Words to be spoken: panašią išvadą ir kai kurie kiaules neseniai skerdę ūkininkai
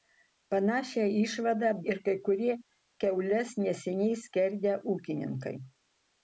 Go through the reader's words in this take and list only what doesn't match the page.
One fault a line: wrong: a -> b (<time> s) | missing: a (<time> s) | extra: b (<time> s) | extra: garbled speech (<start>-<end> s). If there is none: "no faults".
no faults